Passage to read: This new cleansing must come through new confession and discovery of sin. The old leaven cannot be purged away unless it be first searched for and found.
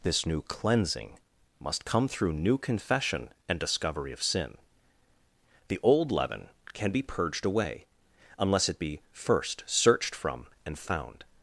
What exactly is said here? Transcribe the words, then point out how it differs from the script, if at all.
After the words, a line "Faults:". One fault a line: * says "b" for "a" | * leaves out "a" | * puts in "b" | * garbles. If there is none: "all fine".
This new cleansing must come through new confession and discovery of sin. The old leaven can be purged away unless it be first searched from and found.
Faults:
* says "can" for "cannot"
* says "from" for "for"